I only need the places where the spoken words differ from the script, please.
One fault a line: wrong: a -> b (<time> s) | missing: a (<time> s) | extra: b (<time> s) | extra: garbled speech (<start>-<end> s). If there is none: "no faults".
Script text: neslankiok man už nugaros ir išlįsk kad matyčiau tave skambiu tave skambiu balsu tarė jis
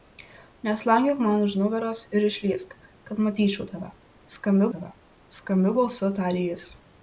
no faults